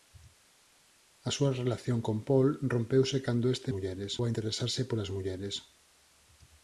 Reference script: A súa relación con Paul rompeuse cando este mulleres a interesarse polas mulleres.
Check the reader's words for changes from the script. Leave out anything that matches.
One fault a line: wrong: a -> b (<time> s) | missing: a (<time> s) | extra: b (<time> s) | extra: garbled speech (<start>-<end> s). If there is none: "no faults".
no faults